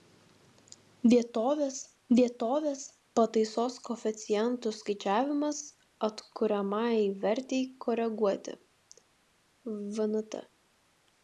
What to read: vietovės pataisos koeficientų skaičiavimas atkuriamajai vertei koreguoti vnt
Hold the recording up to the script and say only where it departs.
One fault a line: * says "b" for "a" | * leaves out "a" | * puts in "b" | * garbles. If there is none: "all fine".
* puts in "vietovės"